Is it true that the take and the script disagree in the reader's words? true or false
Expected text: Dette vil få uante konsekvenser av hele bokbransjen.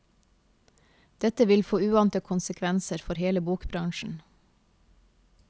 true